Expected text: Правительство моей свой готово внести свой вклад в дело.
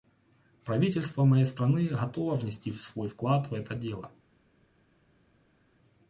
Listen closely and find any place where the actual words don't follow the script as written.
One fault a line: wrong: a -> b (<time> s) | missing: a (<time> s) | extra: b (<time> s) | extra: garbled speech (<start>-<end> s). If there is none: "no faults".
wrong: свой -> страны (1.4 s)
extra: это (3.5 s)